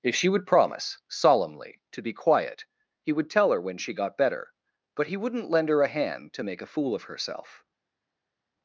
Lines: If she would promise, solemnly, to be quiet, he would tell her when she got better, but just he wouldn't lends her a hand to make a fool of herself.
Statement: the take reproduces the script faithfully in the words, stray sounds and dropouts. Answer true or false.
false